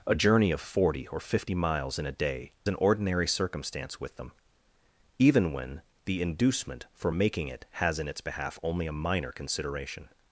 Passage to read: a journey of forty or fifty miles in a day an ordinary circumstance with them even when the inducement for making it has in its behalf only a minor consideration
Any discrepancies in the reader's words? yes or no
no